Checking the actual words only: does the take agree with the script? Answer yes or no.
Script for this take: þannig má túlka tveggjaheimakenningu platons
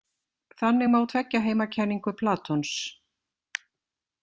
no